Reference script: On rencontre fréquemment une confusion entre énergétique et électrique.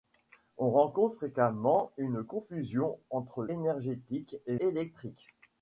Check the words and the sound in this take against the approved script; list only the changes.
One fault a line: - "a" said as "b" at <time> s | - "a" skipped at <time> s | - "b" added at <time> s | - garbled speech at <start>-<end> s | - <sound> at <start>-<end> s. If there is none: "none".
none